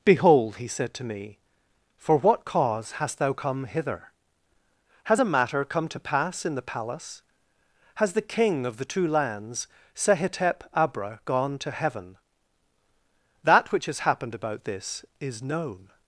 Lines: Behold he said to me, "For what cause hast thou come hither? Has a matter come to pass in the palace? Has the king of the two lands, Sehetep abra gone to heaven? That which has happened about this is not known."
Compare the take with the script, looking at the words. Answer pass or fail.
fail